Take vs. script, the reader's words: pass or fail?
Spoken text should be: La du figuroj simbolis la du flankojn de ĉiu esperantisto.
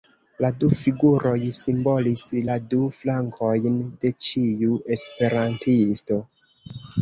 pass